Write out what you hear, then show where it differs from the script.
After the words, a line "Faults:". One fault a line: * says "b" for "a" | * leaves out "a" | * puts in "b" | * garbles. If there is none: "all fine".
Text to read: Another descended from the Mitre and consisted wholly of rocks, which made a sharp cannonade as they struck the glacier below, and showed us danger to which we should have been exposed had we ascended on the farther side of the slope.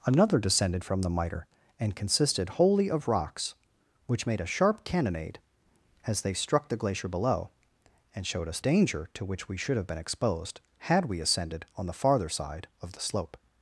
Another descended from the Mitre and consisted wholly of rocks, which made a sharp cannonade as they struck the glacier below, and showed us danger to which we should have been exposed had we ascended on the farther side of the slope.
Faults:
all fine